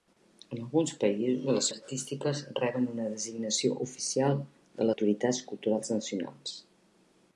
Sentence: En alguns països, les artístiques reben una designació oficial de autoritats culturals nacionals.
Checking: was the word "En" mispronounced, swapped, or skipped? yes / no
no